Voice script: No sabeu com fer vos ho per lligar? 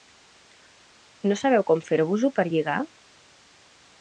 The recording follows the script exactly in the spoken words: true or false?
true